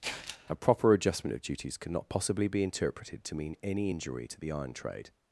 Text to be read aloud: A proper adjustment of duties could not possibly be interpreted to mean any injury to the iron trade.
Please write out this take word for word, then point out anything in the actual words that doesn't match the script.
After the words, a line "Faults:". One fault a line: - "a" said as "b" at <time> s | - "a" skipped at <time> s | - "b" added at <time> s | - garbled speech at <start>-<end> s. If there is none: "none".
A proper adjustment of duties cannot possibly be interpreted to mean any injury to the iron trade.
Faults:
- "could not" said as "cannot" at 1.8 s